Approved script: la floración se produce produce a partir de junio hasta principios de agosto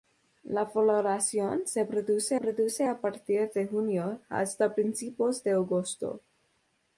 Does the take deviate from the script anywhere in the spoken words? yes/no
no